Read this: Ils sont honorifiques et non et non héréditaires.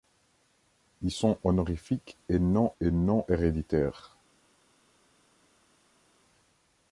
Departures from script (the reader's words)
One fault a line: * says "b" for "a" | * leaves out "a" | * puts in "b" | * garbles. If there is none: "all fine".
all fine